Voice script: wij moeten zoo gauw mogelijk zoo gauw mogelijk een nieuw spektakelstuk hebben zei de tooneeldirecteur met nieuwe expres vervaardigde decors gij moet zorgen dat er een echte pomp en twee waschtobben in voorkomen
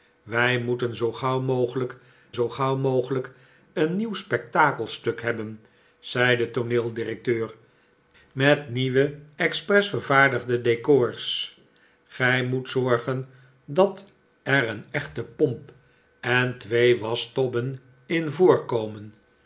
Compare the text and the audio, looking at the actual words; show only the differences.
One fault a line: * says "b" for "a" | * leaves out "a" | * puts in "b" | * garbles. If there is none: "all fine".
all fine